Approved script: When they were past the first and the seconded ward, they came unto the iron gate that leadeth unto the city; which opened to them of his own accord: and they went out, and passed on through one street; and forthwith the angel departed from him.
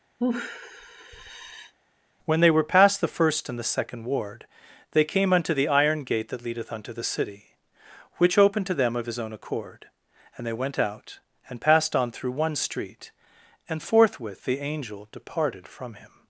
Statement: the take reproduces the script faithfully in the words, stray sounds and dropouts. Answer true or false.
false